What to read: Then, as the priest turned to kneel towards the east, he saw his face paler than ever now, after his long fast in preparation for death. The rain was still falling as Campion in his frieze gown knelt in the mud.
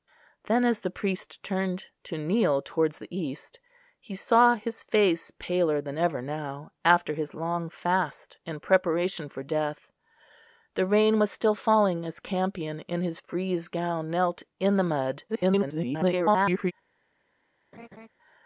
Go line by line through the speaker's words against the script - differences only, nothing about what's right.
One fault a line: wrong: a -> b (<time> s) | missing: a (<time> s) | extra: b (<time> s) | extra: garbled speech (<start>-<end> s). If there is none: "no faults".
extra: garbled speech (15.3-16.7 s)